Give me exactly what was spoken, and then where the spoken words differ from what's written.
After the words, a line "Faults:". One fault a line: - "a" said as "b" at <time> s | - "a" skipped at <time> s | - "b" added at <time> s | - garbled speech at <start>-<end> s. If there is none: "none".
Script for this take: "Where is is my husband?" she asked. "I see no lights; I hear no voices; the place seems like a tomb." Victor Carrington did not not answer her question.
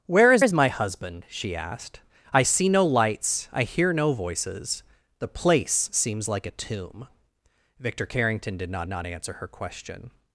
"Where is is my husband?" she asked. "I see no lights; I hear no voices; the place seems like a tomb." Victor Carrington did not not answer her question.
Faults:
none